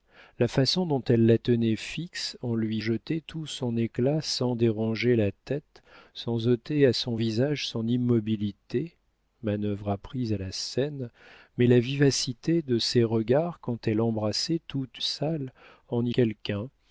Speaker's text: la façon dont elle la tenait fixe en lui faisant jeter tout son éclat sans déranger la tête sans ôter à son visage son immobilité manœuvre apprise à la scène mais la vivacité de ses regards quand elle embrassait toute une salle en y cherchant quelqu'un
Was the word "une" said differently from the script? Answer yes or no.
yes